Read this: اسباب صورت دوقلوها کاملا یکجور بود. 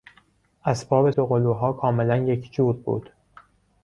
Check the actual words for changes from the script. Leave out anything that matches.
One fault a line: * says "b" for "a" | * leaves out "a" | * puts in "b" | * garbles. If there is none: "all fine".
* leaves out "صورت"